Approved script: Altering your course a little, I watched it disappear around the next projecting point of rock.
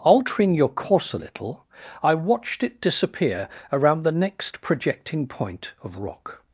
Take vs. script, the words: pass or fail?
pass